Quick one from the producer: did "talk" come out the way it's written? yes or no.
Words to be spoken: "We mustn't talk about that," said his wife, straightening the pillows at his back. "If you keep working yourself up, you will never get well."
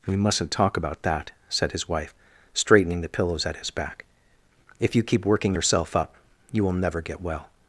yes